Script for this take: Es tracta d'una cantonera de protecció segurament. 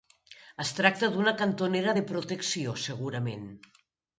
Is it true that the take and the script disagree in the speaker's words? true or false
false